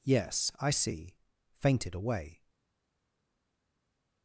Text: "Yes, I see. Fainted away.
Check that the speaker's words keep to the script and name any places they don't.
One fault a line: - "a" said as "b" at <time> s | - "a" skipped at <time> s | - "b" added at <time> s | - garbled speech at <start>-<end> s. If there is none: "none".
none